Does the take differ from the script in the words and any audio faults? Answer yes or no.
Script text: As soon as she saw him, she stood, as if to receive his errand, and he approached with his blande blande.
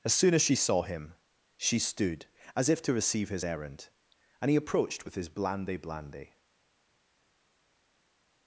no